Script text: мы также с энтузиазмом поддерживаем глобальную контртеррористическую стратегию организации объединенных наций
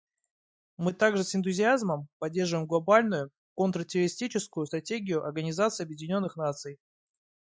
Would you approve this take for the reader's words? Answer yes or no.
yes